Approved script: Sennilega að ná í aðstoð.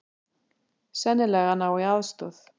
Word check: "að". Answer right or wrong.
right